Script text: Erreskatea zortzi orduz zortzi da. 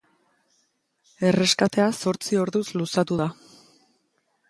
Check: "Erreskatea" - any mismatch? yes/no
no